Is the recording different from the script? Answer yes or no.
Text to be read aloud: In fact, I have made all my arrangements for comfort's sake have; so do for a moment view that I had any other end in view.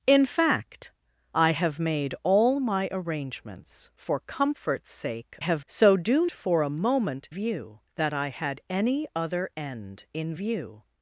no